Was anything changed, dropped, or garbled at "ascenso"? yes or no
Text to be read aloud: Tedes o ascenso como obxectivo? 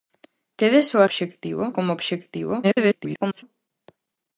yes